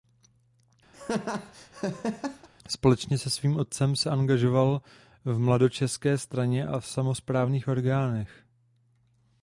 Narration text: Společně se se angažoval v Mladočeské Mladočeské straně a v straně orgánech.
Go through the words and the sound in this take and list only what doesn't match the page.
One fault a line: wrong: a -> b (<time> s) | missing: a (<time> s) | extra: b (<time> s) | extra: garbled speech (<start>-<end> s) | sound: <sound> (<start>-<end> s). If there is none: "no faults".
sound: laugh (0.9-2.5 s)
extra: svým otcem (3.3 s)
missing: Mladočeské (6.2 s)
wrong: straně -> samosprávných (6.9 s)